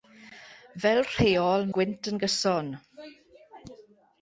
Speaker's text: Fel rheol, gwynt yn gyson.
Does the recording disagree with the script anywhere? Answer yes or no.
no